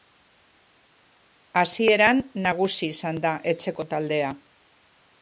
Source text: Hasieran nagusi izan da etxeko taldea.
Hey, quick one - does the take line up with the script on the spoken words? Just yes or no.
yes